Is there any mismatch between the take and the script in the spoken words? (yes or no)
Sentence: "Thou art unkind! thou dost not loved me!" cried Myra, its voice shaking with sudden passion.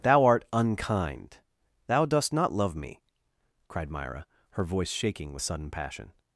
yes